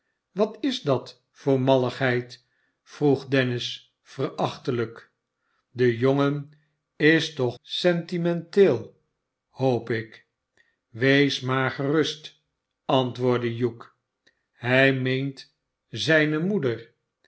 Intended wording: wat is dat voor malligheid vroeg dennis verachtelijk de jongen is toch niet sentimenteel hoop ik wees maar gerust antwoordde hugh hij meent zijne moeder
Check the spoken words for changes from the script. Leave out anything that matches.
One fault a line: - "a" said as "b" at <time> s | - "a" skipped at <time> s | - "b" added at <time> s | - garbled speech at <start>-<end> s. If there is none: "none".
- "niet" skipped at 7.6 s